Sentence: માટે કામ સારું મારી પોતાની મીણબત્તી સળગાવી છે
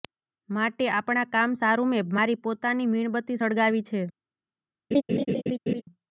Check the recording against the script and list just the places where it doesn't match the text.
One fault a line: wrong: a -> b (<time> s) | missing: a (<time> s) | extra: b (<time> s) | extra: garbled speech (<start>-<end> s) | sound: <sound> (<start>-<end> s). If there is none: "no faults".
extra: આપણા (0.9 s)
extra: મેં (1.9 s)
sound: laugh (4.9-5.8 s)